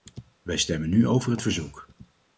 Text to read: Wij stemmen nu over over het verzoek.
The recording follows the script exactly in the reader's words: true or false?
false